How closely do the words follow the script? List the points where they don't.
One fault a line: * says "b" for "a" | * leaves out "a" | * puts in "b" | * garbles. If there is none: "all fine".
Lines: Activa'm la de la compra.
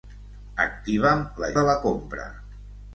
all fine